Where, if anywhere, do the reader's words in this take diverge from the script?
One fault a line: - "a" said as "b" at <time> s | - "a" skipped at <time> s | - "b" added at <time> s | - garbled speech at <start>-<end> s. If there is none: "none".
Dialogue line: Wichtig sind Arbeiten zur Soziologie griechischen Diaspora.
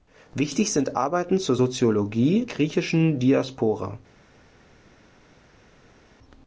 none